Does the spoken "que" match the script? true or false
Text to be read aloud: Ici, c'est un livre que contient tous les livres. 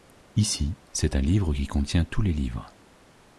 false